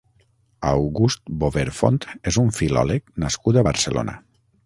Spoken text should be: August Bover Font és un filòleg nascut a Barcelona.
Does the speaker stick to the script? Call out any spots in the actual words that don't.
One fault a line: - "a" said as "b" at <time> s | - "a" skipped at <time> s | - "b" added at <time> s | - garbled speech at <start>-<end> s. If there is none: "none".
none